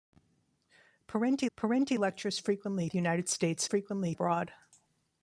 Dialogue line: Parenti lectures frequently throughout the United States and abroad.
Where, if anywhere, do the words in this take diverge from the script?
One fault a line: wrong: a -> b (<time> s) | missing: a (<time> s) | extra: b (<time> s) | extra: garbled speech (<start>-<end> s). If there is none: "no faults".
extra: parenti (1.5 s)
missing: throughout (2.9 s)
wrong: and -> frequently (3.6 s)